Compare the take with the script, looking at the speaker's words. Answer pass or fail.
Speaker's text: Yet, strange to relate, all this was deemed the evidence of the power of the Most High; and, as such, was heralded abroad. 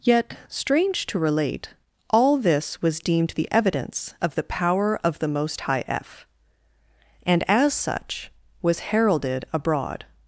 fail